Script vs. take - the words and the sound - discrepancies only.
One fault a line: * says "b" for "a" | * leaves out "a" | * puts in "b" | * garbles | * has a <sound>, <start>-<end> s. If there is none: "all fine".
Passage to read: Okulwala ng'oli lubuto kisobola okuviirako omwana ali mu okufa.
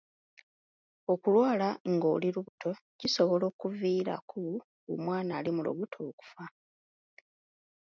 * has a dropout, 2.5-2.6 s
* puts in "lubuto"